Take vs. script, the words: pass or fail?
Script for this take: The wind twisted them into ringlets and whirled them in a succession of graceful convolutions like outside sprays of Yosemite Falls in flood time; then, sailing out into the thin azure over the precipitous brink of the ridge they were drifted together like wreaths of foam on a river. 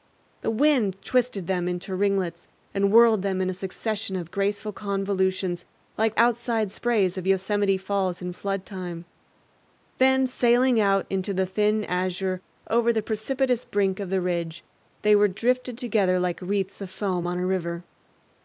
pass